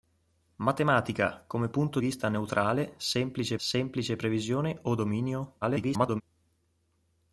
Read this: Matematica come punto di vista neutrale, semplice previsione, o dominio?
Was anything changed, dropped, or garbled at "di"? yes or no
yes